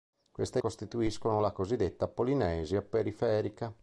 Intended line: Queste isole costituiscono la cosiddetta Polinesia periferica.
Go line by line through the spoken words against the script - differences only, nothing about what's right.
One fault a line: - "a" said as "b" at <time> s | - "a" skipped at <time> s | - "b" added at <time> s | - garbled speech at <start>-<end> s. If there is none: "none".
- "isole" skipped at 0.6 s